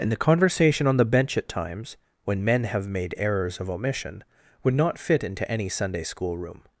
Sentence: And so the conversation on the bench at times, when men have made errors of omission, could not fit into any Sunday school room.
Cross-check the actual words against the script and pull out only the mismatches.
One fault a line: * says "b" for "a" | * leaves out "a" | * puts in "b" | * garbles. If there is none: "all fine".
* leaves out "so"
* says "would" for "could"